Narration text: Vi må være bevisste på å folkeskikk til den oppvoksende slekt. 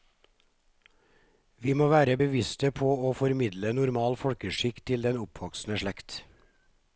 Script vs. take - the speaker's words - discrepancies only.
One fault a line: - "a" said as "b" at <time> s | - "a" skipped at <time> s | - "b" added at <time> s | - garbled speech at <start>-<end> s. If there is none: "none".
- "formidle normal" added at 3.2 s